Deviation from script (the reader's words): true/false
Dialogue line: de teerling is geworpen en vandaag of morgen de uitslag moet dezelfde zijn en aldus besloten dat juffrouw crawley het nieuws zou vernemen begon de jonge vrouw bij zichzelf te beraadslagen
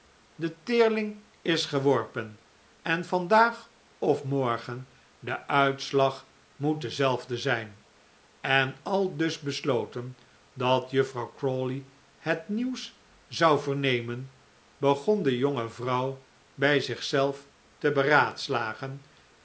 false